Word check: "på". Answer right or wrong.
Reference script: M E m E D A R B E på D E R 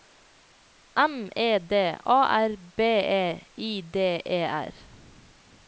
wrong